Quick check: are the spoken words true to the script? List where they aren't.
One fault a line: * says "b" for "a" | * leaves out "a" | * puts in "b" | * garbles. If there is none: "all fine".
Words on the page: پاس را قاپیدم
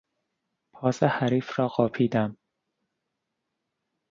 * puts in "حریف"